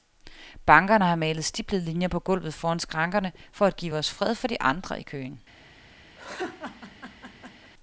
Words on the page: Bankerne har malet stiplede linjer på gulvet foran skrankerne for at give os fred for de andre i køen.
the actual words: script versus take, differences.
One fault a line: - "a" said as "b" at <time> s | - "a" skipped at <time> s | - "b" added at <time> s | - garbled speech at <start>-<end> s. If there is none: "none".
none